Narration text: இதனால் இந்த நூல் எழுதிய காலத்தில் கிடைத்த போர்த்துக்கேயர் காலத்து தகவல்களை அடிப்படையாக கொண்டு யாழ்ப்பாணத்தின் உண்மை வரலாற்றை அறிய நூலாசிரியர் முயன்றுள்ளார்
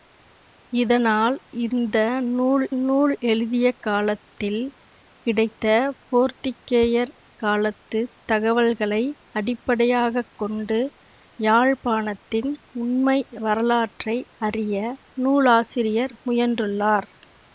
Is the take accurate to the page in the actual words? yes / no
no